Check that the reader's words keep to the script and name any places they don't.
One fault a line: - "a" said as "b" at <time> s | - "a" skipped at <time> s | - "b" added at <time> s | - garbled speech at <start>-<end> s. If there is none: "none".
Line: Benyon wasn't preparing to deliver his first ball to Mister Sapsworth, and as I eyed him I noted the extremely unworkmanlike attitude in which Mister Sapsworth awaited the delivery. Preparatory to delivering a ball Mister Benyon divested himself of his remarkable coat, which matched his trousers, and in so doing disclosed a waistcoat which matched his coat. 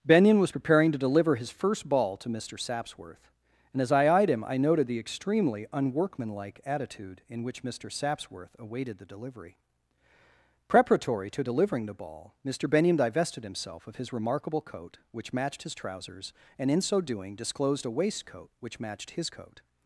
- "wasn't" said as "was" at 0.4 s
- "a" said as "the" at 11.8 s